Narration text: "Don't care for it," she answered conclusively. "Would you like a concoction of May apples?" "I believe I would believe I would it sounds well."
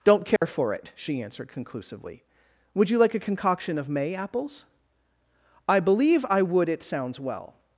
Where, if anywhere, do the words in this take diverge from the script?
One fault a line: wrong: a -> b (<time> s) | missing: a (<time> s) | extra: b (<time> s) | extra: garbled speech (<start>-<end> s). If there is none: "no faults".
missing: believe I would (6.7 s)